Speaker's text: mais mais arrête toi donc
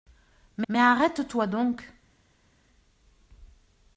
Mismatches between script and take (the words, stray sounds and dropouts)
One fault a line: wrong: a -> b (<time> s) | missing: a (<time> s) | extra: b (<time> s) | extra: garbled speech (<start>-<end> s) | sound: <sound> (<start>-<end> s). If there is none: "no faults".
no faults